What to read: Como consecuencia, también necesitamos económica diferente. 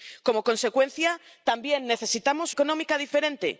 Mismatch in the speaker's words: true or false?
false